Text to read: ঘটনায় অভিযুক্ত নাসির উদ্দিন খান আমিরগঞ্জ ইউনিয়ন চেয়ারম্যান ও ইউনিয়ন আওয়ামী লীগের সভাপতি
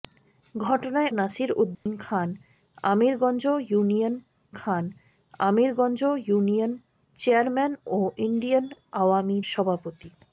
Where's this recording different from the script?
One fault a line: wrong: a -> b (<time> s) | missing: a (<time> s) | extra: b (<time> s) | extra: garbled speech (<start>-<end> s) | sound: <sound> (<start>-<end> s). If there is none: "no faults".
missing: অভিযুক্ত (1.1 s)
sound: dropout (1.7-1.9 s)
extra: খান আমিরগঞ্জ ইউনিয়ন (4.5 s)
missing: লীগের (9.4 s)